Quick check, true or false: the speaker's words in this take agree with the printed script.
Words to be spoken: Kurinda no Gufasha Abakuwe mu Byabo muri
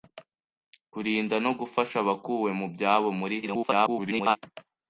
false